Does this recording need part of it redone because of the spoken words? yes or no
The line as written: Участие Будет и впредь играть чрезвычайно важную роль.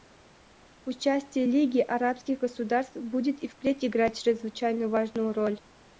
yes